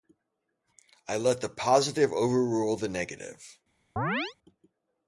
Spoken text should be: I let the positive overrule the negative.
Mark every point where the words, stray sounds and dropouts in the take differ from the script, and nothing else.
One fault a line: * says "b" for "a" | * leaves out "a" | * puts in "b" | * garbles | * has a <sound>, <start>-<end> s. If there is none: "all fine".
* has a chirp, 4.0-4.3 s